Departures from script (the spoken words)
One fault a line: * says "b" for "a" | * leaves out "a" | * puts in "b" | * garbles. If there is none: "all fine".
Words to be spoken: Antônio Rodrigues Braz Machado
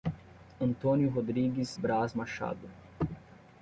all fine